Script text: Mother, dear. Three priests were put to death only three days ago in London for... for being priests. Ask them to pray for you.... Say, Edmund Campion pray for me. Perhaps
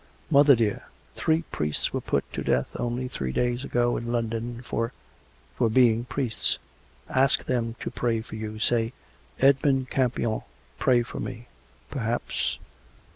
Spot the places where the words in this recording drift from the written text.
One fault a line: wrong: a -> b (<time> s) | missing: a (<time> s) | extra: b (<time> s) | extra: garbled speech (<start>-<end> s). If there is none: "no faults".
no faults